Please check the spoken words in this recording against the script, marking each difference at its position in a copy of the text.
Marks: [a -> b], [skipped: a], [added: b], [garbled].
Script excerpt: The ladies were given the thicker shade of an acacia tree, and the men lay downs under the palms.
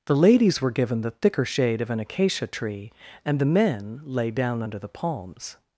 The ladies were given the thicker shade of an acacia tree, and the men lay [downs -> down] under the palms.